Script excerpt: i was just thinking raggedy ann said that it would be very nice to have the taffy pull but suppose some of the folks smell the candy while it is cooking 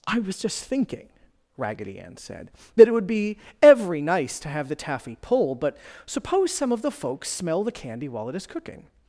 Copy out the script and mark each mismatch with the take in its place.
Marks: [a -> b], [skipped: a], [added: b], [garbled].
i was just thinking raggedy ann said that it would be [very -> every] nice to have the taffy pull but suppose some of the folks smell the candy while it is cooking